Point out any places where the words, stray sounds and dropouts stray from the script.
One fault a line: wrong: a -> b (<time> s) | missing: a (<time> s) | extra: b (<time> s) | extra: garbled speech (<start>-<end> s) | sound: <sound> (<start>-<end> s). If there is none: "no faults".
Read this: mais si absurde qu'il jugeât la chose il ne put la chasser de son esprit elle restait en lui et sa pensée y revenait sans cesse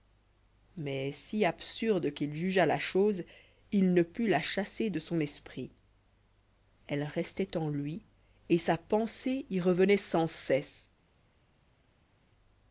no faults